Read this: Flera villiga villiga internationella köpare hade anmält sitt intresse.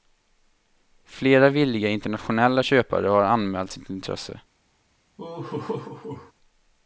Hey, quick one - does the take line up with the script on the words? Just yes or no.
no